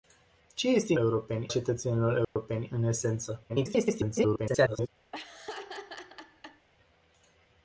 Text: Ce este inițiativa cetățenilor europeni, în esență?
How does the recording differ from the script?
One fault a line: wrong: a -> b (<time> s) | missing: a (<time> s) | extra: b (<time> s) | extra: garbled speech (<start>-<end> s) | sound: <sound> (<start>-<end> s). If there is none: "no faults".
wrong: inițiativa -> europeni (1.0 s)
sound: dropout (2.2-2.4 s)
extra: garbled speech (3.5-4.9 s)
sound: laugh (5.1-6.7 s)